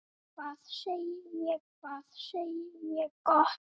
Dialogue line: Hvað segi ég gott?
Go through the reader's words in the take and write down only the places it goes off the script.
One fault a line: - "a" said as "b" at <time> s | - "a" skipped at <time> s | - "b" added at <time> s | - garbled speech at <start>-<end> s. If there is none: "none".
- "hvað segi ég" added at 1.8 s